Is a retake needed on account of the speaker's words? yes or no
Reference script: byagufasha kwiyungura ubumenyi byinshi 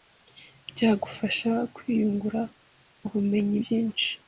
no